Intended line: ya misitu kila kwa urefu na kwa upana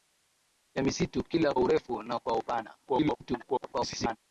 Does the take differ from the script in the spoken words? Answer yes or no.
yes